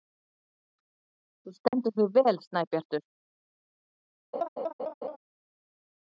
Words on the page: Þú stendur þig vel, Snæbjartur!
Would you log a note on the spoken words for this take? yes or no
no